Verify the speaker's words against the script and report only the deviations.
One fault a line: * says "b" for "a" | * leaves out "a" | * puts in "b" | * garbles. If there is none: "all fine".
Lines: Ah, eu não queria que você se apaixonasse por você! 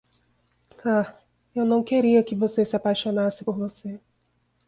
all fine